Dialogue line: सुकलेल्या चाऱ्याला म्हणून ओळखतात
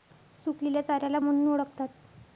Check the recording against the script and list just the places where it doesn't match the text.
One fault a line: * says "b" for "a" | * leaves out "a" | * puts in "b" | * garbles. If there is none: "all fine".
all fine